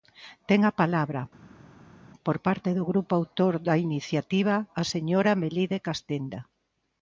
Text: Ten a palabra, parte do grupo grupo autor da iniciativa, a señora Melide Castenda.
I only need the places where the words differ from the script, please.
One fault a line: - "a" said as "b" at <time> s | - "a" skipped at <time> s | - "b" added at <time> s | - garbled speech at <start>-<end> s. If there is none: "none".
- "por" added at 2.2 s
- "grupo" skipped at 3.1 s